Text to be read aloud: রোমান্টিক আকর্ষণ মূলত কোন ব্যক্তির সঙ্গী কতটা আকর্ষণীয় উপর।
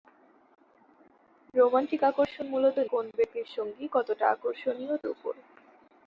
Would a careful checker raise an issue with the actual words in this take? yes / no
no